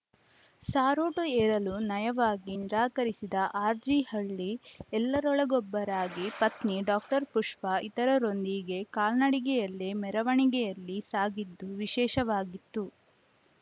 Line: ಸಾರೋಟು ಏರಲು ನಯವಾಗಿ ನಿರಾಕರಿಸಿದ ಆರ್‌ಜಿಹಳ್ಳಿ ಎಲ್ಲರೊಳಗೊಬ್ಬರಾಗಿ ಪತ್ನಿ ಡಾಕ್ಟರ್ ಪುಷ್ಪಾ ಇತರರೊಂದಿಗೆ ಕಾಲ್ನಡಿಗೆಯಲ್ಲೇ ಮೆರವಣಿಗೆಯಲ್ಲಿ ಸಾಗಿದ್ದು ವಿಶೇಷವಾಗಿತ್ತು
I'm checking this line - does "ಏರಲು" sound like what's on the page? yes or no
yes